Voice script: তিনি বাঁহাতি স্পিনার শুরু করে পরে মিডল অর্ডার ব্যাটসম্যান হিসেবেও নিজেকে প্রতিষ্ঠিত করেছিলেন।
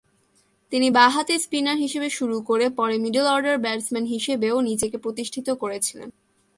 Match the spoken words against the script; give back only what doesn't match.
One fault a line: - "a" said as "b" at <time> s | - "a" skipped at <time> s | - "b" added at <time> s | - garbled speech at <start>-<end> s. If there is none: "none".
- "হিসেবে" added at 1.8 s